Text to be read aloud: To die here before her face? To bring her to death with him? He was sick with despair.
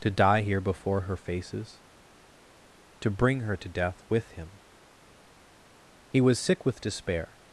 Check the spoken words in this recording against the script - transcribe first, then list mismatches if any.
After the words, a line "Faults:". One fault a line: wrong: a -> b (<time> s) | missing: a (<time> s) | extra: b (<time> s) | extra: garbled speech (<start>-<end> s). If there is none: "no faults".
To die here before her faces? To bring her to death with him? He was sick with despair.
Faults:
wrong: face -> faces (1.2 s)